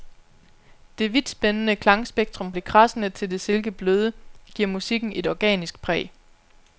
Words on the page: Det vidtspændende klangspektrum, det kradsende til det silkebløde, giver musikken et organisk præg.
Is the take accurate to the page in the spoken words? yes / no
yes